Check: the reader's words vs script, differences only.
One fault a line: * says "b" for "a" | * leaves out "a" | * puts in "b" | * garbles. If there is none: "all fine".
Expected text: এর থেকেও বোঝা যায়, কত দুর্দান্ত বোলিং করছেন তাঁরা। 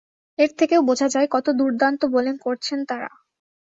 all fine